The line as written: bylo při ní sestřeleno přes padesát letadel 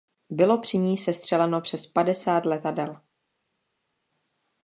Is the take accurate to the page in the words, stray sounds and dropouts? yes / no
yes